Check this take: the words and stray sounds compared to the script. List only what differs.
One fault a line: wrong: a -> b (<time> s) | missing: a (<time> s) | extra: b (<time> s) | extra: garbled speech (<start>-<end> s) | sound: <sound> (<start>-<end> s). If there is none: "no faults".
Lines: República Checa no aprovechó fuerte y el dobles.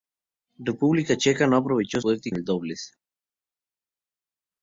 no faults